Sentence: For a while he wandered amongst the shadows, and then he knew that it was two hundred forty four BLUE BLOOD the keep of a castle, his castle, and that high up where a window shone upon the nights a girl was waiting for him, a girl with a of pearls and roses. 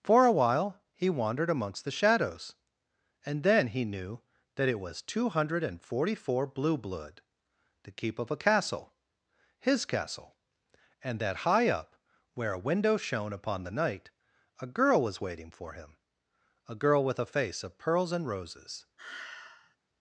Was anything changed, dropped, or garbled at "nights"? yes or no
yes